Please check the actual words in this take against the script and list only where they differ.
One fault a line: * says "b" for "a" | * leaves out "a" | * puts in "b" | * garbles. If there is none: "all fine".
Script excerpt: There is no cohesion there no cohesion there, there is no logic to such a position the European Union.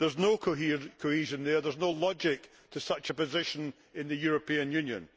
* leaves out "no cohesion"
* leaves out "there"
* puts in "in"